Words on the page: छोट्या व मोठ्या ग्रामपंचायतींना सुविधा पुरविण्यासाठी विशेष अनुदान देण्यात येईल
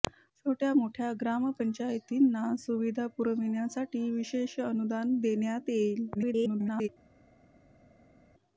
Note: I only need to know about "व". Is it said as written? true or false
false